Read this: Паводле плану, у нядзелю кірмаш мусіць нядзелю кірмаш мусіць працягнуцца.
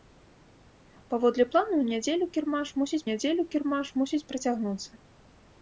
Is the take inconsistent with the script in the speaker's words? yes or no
no